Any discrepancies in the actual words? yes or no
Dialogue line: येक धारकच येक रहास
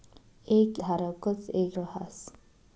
no